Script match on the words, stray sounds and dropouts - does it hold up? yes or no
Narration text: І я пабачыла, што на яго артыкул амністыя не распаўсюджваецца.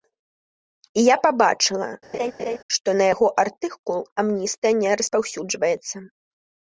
no